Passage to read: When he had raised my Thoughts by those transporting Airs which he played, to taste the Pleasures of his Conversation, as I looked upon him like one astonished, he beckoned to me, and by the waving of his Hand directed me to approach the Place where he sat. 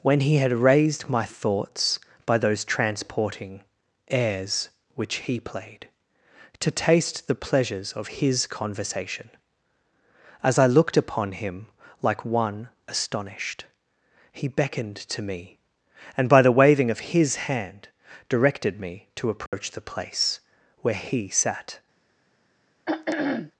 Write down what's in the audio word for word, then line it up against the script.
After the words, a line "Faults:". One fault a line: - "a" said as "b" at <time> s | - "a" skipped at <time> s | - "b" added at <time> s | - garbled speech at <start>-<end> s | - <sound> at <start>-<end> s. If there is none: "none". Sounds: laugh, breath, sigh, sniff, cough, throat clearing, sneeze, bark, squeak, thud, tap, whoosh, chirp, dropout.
When he had raised my Thoughts by those transporting Airs which he played, to taste the Pleasures of his Conversation, as I looked upon him like one astonished, he beckoned to me, and by the waving of his Hand directed me to approach the Place where he sat.
Faults:
- dropout at 19.5-19.5 s
- throat clearing at 22.9-23.5 s